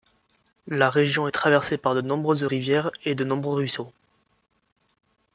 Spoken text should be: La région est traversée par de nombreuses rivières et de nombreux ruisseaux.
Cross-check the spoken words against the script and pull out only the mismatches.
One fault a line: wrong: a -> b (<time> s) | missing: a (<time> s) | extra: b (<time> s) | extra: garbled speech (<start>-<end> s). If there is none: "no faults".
no faults